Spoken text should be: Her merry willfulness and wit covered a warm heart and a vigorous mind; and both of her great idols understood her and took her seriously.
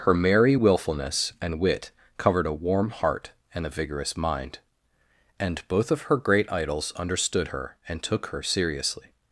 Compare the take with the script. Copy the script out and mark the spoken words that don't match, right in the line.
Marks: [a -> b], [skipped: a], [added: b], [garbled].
Her merry willfulness and wit covered a warm heart and a vigorous mind; and both of her great idols understood her and took her seriously.